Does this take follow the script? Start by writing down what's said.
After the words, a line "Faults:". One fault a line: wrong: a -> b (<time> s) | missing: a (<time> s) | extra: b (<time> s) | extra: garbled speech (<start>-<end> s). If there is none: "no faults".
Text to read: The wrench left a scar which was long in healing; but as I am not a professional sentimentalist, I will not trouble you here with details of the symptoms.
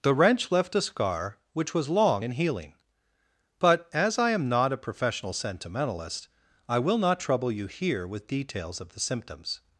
The wrench left a scar which was long in healing; but as I am not a professional sentimentalist, I will not trouble you here with details of the symptoms.
Faults:
no faults